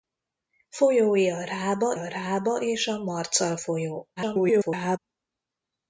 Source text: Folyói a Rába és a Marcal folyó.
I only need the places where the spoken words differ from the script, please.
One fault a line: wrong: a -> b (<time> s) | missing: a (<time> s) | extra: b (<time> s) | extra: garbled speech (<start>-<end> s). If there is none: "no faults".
extra: a Rába (1.9 s)
extra: garbled speech (4.2-5.0 s)